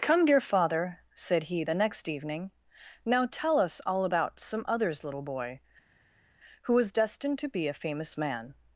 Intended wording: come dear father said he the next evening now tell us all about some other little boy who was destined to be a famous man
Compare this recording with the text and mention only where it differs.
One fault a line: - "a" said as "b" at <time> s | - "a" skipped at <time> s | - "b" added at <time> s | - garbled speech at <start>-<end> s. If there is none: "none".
- "other" said as "others" at 4.7 s